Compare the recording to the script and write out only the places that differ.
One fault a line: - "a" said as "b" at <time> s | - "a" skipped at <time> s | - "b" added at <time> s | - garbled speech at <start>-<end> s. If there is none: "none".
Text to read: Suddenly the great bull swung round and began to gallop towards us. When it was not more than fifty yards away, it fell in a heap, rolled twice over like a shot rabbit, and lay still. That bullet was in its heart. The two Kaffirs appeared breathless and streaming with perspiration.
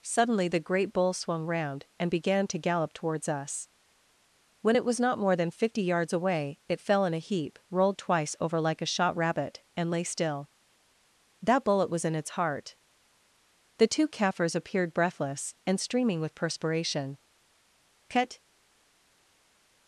- "Cut" added at 18.1 s